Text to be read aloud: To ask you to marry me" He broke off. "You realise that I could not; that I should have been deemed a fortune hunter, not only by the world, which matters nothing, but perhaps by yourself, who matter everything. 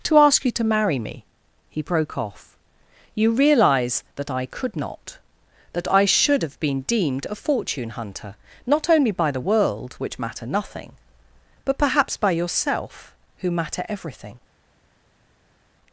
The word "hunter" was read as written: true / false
true